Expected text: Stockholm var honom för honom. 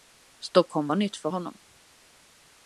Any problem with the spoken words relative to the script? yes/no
yes